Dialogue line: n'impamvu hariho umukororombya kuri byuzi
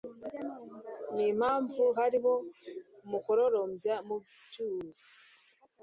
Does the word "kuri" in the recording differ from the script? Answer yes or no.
yes